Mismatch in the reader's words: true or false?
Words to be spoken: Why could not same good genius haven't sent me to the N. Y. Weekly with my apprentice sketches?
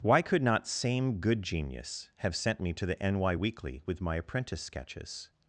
true